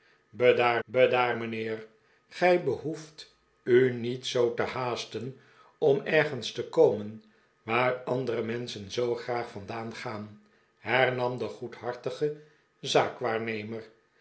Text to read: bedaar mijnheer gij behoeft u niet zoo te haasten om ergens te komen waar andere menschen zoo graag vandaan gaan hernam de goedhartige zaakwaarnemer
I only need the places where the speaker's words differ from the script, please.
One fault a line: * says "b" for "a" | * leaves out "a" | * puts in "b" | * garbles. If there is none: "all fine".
* puts in "bedaar"